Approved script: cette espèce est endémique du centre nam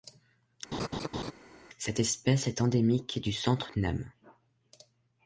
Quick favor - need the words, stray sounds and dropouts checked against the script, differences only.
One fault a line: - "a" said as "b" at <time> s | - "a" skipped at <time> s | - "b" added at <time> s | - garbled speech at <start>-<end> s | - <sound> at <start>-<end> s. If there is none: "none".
- laugh at 0.7-1.3 s